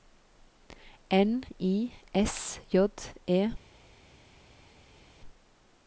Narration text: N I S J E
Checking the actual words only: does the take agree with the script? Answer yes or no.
yes